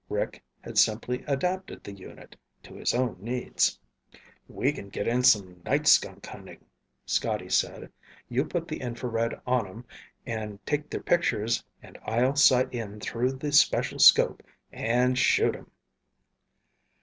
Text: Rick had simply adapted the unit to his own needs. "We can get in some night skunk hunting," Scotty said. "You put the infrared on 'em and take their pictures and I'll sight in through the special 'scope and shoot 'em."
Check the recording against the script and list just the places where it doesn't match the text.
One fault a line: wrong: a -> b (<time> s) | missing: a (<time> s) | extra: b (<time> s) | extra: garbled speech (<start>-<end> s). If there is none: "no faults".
no faults